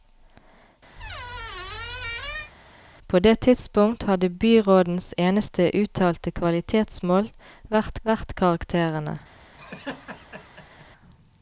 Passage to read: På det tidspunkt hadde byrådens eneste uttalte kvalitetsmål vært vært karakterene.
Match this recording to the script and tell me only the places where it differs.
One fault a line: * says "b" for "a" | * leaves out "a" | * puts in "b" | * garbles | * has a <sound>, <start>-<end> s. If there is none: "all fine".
* has a squeak, 1.0-2.5 s
* has a laugh, 9.6-10.9 s